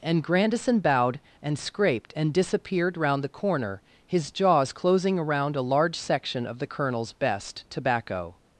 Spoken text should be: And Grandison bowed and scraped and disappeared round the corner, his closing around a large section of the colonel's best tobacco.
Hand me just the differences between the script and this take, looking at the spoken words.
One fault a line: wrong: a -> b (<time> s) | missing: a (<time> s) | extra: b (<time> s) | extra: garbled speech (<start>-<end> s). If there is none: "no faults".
extra: jaws (4.3 s)